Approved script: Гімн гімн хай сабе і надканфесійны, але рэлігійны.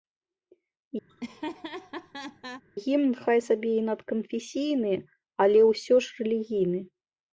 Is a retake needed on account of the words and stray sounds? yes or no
yes